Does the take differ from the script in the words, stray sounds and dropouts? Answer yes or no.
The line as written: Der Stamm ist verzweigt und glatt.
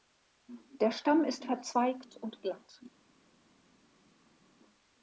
no